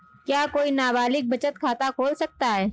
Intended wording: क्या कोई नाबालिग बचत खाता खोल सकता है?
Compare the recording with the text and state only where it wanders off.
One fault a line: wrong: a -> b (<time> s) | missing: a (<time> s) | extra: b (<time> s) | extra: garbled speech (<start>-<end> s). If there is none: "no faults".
no faults